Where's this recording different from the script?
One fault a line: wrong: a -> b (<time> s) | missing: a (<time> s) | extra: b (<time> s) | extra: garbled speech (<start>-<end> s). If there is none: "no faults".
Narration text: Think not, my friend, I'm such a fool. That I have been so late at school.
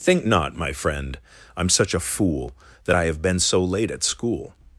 no faults